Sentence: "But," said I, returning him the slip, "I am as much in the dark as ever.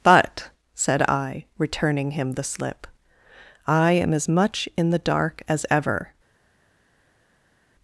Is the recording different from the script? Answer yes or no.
no